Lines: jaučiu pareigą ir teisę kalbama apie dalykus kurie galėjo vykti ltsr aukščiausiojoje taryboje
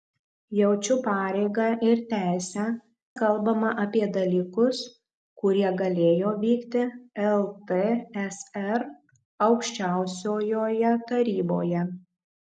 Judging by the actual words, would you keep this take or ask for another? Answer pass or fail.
pass